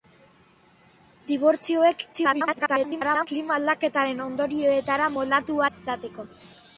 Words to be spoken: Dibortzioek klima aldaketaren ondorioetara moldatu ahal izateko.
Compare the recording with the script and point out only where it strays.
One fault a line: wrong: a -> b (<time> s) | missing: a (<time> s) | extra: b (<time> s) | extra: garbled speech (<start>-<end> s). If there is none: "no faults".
extra: garbled speech (2.1-3.3 s)
missing: ahal (5.6 s)